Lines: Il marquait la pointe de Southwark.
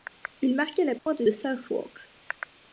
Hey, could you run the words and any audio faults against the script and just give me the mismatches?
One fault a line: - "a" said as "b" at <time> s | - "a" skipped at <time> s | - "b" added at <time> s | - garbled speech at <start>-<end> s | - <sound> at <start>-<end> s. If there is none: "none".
- dropout at 1.0-1.1 s